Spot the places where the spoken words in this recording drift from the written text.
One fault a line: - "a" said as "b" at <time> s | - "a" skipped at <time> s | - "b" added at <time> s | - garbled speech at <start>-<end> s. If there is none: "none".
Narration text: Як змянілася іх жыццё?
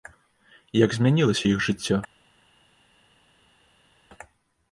none